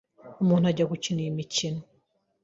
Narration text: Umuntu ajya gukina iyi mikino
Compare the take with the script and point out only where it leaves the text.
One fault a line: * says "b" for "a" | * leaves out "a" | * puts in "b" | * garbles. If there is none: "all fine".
all fine